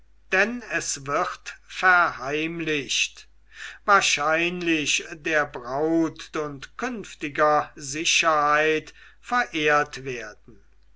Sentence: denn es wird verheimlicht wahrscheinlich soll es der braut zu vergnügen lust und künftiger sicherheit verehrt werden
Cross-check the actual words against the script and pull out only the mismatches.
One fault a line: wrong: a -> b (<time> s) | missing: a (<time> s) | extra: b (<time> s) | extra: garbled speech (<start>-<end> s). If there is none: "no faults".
missing: soll es (5.0 s)
missing: zu vergnügen lust (6.3 s)